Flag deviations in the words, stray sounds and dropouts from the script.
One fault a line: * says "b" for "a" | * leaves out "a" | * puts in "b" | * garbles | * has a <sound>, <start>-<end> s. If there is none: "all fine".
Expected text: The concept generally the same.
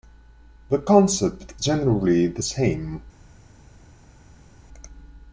all fine